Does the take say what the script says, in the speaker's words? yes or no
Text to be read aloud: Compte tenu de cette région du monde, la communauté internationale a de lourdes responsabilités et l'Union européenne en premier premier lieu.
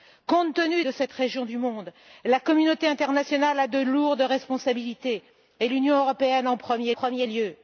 yes